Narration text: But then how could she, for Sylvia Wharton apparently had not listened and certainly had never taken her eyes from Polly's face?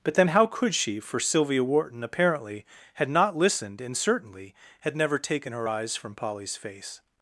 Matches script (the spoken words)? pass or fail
pass